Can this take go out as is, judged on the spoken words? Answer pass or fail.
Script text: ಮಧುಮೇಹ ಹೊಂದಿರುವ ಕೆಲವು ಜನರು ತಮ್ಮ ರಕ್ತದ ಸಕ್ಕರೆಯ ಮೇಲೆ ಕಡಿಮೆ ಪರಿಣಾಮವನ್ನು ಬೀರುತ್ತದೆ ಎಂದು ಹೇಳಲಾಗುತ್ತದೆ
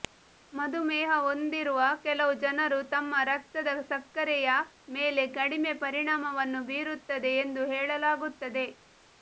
pass